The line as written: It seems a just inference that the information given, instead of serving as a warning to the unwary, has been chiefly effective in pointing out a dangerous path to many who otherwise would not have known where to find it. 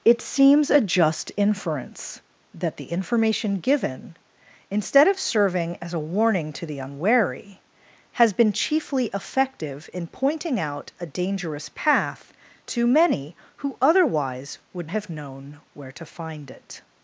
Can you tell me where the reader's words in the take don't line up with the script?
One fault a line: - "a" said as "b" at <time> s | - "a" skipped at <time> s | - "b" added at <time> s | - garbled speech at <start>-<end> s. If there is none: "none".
- "not" skipped at 14.9 s